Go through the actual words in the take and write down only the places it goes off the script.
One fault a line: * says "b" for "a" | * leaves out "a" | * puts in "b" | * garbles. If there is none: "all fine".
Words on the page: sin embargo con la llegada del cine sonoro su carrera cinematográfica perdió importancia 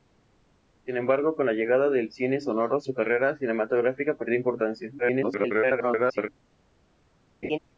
* garbles